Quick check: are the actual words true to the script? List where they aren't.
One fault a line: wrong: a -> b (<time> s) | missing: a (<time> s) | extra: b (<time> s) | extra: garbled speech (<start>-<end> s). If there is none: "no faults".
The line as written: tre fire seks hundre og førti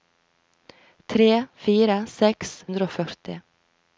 no faults